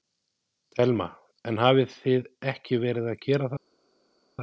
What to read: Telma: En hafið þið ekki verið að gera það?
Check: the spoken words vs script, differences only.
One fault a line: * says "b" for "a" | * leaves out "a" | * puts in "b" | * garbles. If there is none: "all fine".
all fine